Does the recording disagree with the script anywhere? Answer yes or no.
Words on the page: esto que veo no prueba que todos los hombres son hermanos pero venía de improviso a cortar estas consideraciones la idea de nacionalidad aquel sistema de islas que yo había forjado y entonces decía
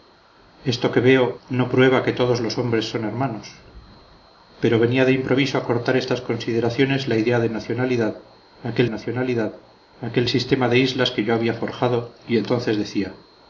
yes